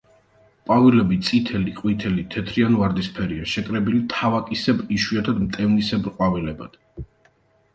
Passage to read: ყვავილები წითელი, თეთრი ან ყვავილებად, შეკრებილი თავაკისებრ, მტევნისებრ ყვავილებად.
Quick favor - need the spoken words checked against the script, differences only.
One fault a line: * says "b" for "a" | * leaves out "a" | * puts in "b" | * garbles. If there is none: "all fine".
* puts in "ყვითელი"
* says "ვარდისფერია" for "ყვავილებად"
* puts in "იშვიათად"